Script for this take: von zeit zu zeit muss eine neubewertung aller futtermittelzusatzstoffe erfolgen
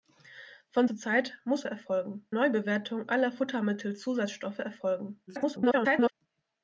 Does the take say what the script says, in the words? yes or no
no